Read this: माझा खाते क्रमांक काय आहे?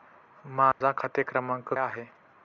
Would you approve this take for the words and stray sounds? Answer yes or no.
no